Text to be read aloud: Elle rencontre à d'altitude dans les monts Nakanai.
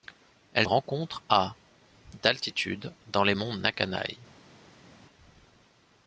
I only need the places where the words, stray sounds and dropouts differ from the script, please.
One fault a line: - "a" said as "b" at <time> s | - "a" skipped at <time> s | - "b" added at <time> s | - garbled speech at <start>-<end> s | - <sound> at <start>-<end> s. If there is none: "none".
none